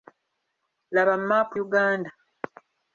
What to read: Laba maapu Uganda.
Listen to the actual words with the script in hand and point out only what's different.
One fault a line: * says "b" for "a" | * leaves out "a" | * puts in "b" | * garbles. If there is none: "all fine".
all fine